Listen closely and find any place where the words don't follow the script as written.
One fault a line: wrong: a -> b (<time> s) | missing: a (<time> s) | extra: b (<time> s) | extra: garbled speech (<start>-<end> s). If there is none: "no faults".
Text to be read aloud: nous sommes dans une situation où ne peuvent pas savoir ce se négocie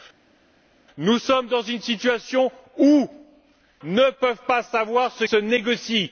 no faults